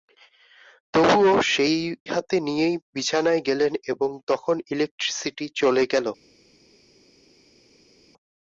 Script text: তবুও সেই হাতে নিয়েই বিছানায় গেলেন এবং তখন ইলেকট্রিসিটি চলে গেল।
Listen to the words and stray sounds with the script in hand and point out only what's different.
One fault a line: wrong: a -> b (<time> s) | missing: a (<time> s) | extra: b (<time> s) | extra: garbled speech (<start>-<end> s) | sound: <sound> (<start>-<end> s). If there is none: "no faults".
no faults